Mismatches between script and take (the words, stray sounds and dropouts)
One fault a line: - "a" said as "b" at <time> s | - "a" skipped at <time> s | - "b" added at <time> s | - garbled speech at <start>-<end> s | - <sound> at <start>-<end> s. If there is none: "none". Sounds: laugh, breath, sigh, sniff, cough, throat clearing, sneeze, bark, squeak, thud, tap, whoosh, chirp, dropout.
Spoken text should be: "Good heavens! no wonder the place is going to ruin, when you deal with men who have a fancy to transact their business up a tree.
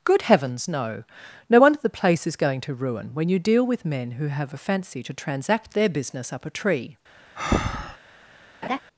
- "no" added at 1.5 s
- breath at 7.4-8.0 s
- laugh at 8.6-8.8 s